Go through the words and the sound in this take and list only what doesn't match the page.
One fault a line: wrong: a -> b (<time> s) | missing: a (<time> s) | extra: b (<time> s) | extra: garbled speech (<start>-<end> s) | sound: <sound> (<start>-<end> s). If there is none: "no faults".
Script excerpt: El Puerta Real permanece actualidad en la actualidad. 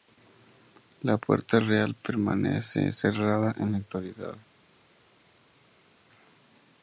wrong: El -> La (1.0 s)
wrong: actualidad -> cerrada (2.9 s)